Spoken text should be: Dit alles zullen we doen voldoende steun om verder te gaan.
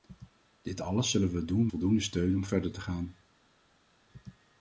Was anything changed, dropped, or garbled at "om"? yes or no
no